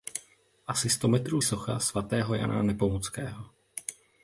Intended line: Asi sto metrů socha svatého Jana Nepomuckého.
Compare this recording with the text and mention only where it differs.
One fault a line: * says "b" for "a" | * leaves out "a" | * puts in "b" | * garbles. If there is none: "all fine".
all fine